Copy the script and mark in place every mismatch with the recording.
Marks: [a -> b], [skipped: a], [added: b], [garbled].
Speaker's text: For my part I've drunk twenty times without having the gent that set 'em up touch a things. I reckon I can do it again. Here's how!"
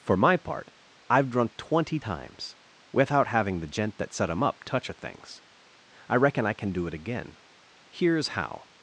For my part I've drunk twenty times without having the gent that set 'em up touch a things. I reckon I can do it again. Here's how!"